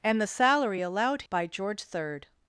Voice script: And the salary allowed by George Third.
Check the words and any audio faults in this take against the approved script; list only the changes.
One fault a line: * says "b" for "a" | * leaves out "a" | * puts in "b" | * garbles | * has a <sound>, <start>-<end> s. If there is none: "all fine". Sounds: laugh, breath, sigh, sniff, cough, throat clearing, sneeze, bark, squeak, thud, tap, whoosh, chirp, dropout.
all fine